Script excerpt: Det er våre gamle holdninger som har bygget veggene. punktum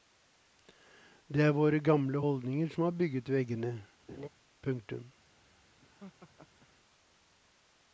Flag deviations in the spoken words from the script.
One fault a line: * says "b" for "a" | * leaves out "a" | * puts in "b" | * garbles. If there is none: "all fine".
all fine